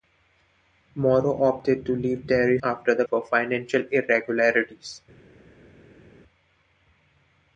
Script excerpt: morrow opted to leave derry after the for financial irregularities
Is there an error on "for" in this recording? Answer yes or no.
no